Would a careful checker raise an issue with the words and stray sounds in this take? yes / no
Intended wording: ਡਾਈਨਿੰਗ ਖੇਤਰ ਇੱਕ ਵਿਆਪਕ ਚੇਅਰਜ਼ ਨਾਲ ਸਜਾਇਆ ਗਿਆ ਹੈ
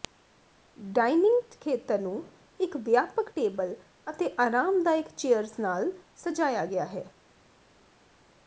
yes